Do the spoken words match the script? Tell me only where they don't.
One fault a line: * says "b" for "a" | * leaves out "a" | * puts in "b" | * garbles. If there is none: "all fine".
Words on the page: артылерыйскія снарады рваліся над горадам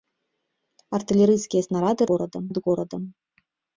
* says "горадам" for "рваліся"